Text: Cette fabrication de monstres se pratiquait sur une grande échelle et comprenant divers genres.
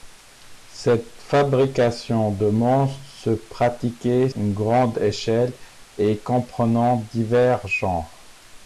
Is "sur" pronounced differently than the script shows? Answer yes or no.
yes